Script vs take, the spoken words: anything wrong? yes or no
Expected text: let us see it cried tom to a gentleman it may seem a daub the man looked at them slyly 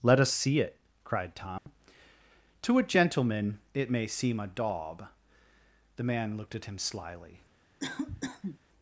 yes